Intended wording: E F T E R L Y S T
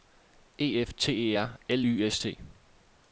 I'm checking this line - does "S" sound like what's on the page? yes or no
yes